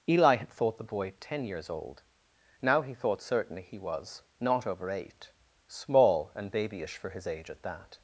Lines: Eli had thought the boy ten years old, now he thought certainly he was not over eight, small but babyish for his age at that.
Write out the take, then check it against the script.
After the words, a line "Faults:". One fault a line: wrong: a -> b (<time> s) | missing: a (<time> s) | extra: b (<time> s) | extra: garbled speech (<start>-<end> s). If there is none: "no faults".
Eli had thought the boy ten years old, now he thought certainly he was not over eight, small and babyish for his age at that.
Faults:
wrong: but -> and (6.3 s)